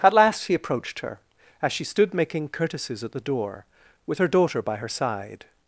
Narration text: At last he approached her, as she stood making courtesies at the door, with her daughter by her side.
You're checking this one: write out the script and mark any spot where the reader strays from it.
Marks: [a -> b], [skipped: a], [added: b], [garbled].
At last he approached her, as she stood making courtesies at the door, with her daughter by her side.